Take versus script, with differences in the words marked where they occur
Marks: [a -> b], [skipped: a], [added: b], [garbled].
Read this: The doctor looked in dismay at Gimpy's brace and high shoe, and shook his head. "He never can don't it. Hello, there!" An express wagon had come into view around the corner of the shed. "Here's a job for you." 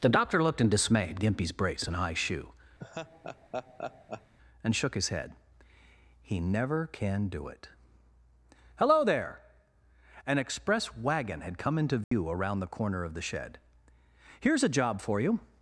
The doctor looked in dismay at Gimpy's brace and high shoe, and shook his head. "He never can [don't -> do] it. Hello, there!" An express wagon had come into view around the corner of the shed. "Here's a job for you."